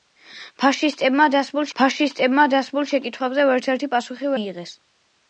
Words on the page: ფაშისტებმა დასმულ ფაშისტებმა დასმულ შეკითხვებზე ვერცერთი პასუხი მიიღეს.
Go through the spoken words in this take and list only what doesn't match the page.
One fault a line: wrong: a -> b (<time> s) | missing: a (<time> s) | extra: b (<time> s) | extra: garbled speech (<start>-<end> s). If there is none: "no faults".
no faults